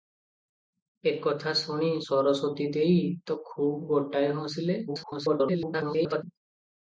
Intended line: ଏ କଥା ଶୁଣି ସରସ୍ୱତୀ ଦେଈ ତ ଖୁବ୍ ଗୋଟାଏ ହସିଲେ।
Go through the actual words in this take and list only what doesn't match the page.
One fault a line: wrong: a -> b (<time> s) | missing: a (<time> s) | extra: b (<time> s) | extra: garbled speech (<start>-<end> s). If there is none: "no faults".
extra: garbled speech (4.9-6.2 s)